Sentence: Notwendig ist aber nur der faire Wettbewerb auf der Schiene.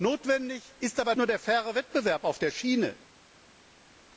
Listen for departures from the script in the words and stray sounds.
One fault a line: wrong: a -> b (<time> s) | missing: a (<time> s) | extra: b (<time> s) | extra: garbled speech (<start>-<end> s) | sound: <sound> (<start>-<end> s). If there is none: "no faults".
no faults